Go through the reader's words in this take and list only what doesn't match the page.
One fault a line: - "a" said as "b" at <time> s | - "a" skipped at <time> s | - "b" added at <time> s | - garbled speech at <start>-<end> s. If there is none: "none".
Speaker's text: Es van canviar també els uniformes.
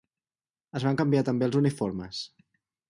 none